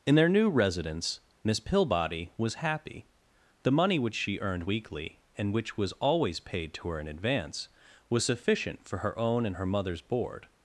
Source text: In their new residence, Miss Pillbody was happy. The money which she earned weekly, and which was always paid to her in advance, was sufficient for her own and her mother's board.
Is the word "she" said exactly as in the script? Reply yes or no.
yes